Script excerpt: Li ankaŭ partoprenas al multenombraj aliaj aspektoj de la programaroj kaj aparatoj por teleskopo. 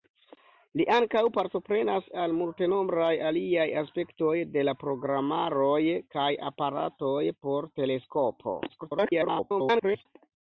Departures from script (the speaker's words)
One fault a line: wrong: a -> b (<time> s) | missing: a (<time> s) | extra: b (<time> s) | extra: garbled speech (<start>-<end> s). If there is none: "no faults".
extra: garbled speech (8.7-10.1 s)